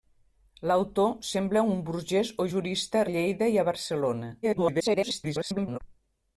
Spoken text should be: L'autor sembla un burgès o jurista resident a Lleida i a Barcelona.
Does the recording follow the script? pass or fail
fail